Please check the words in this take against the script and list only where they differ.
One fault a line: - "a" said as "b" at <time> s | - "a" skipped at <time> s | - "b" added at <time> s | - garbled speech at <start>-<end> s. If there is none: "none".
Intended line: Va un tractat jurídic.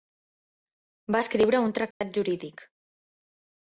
- "escriure" added at 1.2 s